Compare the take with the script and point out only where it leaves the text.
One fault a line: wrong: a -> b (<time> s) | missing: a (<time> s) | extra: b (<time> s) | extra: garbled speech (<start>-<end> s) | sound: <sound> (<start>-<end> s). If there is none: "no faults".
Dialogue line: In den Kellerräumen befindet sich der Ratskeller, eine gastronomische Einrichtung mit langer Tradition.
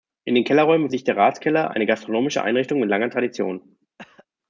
missing: befindet (0.9 s)
sound: cough (4.0-4.3 s)